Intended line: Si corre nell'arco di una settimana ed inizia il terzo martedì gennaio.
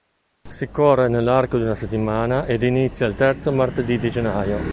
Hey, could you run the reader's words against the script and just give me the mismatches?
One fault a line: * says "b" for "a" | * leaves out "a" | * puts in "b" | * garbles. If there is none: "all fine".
* puts in "di"